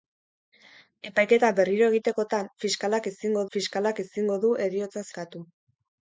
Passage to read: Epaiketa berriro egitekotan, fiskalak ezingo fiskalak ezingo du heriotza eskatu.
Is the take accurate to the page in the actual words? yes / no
yes